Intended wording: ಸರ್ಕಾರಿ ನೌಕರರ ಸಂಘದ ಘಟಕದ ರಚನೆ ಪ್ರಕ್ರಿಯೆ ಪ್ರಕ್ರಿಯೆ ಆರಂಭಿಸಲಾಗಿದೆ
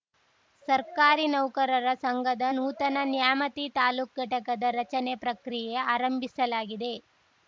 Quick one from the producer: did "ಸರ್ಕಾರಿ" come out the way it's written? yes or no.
yes